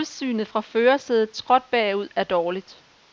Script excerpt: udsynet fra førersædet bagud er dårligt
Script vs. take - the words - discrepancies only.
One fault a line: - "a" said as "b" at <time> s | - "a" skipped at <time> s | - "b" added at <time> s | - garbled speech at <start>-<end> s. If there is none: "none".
- "skråt" added at 1.4 s